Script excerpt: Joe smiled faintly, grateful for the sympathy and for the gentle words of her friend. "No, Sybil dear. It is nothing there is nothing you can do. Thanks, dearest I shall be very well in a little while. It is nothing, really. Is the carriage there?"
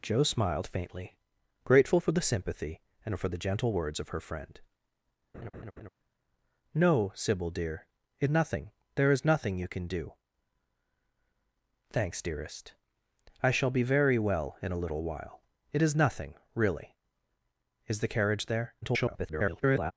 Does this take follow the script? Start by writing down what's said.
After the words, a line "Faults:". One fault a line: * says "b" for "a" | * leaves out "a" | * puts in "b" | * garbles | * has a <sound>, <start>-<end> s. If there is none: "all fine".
Joe smiled faintly, grateful for the sympathy and for the gentle words of her friend. "No, Sybil dear. It nothing there is nothing you can do. Thanks, dearest I shall be very well in a little while. It is nothing, really. Is the carriage there?" [garbled]
Faults:
* has a laugh, 5.3-5.9 s
* leaves out "is"
* garbles